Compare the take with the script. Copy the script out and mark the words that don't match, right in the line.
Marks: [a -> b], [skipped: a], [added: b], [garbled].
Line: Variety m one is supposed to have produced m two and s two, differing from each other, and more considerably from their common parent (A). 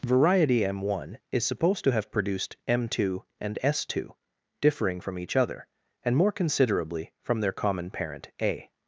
Variety m one is supposed to have produced m two and s two, differing from each other, and more considerably from their common parent (A).